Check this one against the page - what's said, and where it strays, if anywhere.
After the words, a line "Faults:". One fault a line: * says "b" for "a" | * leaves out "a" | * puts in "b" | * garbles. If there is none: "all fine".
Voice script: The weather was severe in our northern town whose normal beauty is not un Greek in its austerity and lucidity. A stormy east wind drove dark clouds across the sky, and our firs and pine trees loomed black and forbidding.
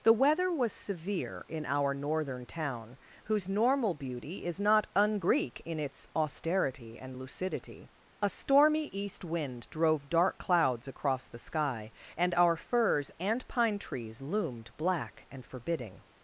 The weather was severe in our northern town whose normal beauty is not un Greek in its austerity and lucidity. A stormy east wind drove dark clouds across the sky, and our firs and pine trees loomed black and forbidding.
Faults:
all fine